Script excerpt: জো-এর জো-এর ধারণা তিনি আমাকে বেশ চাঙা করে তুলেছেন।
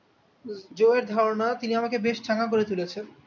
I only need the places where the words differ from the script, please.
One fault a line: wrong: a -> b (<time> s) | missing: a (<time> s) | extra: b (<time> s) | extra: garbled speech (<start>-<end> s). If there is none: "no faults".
missing: জো-এর (1.0 s)